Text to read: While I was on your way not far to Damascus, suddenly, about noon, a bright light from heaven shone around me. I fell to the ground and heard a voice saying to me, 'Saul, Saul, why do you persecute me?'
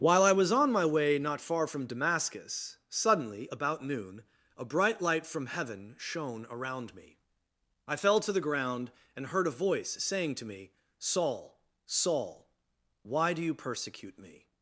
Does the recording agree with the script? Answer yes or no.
no